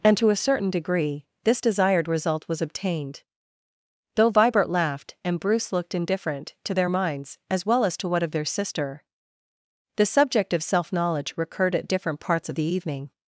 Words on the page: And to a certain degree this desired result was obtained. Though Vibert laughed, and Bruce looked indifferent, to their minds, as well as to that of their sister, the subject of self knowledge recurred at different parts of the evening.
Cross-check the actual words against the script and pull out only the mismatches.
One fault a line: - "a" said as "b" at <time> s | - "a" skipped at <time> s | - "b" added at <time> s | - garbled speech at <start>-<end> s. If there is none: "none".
- "that" said as "what" at 8.1 s